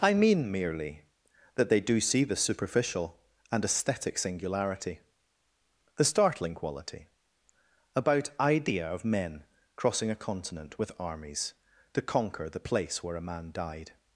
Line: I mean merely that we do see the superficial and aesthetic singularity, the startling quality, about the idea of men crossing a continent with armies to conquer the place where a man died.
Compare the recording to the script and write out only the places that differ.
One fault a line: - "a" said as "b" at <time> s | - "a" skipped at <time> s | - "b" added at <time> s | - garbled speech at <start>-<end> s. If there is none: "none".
- "we" said as "they" at 1.7 s
- "the" skipped at 8.3 s